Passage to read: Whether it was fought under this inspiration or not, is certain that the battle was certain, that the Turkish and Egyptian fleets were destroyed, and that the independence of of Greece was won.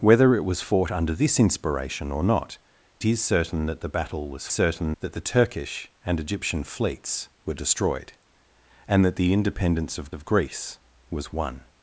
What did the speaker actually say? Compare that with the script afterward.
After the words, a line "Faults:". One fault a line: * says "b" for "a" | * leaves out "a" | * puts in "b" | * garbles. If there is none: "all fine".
Whether it was fought under this inspiration or not, is certain that the battle was certain, that the Turkish and Egyptian fleets were destroyed, and that the independence of of Greece was won.
Faults:
all fine